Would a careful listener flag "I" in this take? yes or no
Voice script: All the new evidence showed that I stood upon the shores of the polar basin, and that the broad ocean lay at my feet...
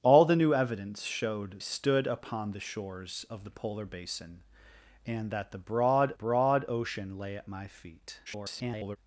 yes